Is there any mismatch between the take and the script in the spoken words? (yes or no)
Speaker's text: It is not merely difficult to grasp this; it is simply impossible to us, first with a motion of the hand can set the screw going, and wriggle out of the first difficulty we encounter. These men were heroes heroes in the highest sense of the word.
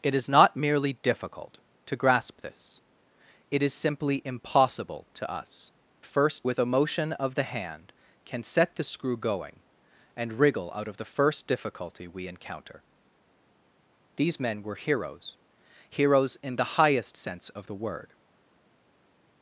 no